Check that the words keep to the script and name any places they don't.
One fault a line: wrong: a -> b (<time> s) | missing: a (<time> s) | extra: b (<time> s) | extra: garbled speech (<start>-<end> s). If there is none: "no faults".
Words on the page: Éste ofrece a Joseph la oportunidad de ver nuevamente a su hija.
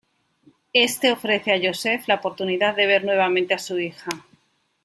no faults